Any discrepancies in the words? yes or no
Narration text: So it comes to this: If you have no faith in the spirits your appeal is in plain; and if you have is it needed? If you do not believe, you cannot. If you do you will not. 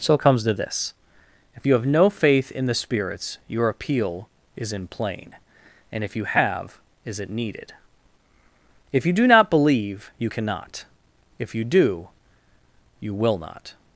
no